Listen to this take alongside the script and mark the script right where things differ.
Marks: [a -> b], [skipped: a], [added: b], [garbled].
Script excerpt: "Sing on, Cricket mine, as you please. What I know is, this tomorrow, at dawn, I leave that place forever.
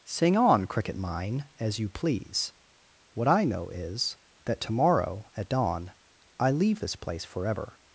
"Sing on, Cricket mine, as you please. What I know is, [this -> that] tomorrow, at dawn, I leave [that -> this] place forever.